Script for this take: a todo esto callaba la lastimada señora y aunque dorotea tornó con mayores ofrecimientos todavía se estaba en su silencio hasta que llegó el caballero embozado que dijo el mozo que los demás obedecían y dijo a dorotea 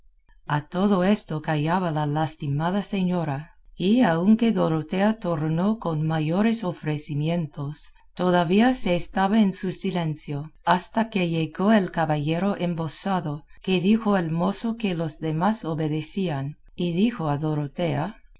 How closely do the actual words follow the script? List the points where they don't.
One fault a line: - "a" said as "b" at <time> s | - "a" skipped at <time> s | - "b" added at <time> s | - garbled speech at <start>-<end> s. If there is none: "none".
none